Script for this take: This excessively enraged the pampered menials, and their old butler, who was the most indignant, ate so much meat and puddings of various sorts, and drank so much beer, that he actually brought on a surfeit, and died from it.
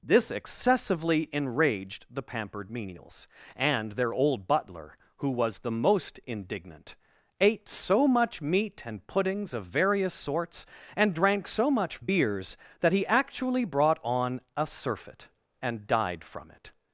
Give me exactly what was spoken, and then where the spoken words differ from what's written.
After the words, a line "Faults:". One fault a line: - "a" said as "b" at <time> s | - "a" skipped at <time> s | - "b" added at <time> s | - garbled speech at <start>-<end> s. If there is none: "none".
This excessively enraged the pampered menials, and their old butler, who was the most indignant, ate so much meat and puddings of various sorts, and drank so much beers, that he actually brought on a surfeit, and died from it.
Faults:
- "beer" said as "beers" at 12.0 s